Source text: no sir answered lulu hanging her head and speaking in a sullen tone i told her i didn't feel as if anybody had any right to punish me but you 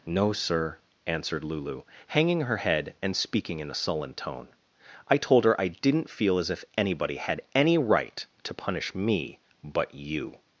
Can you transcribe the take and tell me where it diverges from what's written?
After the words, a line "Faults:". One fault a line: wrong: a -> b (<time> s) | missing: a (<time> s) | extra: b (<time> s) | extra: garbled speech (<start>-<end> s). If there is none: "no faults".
no sir answered lulu hanging her head and speaking in a sullen tone i told her i didn't feel as if anybody had any right to punish me but you
Faults:
no faults